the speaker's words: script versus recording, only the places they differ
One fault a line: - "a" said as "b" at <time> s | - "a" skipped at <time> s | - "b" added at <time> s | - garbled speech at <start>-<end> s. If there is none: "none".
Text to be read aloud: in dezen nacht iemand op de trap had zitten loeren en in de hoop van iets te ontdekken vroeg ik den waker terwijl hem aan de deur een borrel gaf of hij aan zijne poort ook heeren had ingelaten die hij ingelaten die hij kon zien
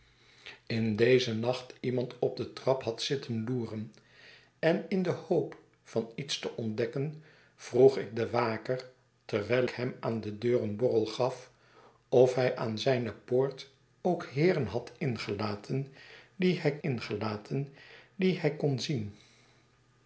none